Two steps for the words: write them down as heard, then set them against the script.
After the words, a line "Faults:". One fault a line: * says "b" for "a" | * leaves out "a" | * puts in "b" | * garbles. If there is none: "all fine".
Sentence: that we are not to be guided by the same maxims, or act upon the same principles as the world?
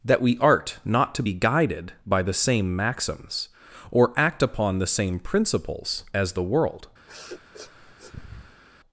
that we art not to be guided by the same maxims, or act upon the same principles as the world?
Faults:
* says "art" for "are"